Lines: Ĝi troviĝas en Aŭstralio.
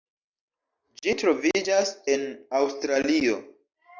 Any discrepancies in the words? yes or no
no